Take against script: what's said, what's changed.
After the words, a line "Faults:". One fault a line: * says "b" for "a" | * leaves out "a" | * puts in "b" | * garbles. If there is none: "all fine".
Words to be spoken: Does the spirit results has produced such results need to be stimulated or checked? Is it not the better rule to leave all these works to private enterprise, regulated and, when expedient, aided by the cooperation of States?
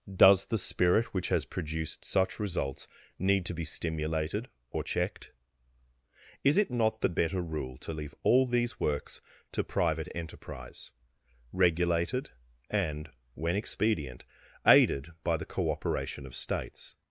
Does the spirit which has produced such results need to be stimulated or checked? Is it not the better rule to leave all these works to private enterprise, regulated and, when expedient, aided by the cooperation of States?
Faults:
* says "which" for "results"